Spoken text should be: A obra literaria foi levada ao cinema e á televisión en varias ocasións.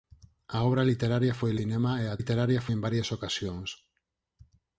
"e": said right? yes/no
yes